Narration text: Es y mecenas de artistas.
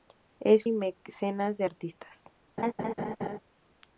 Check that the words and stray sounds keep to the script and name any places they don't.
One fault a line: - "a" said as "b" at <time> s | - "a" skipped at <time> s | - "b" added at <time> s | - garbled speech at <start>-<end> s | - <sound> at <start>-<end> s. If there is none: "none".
- laugh at 2.6-3.4 s